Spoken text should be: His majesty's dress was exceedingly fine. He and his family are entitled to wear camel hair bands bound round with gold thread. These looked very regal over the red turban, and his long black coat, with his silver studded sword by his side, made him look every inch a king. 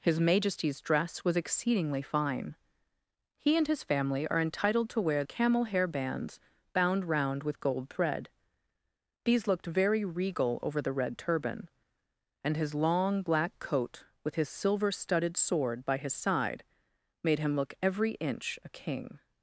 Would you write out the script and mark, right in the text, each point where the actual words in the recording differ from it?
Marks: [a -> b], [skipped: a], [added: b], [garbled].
His majesty's dress was exceedingly fine. He and his family are entitled to wear camel hair bands bound round with gold thread. These looked very regal over the red turban, and his long black coat, with his silver studded sword by his side, made him look every inch a king.